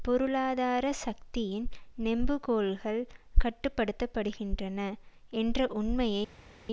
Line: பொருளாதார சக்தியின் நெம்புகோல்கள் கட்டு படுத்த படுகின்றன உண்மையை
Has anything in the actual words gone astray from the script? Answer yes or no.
yes